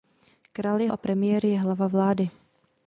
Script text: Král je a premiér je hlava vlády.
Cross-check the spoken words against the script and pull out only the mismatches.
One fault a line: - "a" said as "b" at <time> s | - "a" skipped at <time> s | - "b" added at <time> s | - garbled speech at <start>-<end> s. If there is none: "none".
none